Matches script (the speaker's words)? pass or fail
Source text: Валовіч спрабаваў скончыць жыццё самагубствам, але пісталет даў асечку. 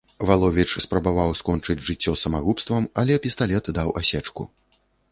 pass